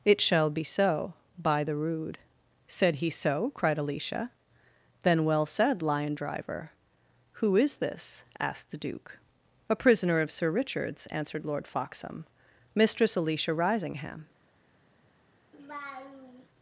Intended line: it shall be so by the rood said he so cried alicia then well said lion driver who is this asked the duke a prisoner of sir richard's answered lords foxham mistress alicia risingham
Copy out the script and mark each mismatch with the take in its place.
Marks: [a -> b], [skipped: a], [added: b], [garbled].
it shall be so by the rood said he so cried alicia then well said lion driver who is this asked the duke a prisoner of sir richard's answered [lords -> lord] foxham mistress alicia risingham